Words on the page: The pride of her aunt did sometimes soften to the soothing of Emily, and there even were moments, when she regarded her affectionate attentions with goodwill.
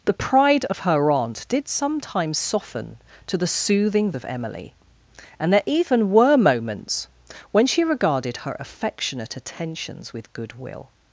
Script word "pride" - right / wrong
right